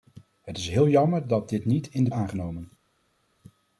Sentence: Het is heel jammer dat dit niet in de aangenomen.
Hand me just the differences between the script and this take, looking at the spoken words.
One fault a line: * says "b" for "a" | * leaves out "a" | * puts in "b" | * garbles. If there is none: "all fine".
all fine